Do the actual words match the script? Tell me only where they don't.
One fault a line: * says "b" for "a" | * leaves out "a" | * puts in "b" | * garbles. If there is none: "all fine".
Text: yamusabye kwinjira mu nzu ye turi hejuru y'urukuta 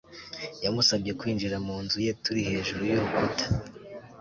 all fine